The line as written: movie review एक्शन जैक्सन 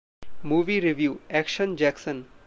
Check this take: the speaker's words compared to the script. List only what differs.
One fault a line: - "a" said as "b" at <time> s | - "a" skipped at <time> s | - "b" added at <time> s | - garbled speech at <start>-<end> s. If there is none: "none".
none